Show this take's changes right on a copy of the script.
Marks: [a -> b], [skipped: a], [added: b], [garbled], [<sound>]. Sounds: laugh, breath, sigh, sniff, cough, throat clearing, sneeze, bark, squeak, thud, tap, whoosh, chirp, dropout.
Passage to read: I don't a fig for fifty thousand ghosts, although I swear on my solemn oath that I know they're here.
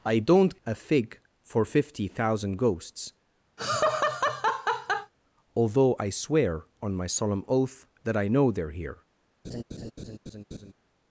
I don't a fig for fifty thousand ghosts, [laugh] although I swear on my solemn oath that I know they're here. [laugh]